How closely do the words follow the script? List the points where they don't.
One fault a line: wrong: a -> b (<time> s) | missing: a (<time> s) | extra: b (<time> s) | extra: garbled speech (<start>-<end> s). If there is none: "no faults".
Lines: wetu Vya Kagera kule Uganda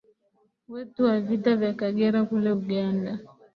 extra: wa Vita (1.1 s)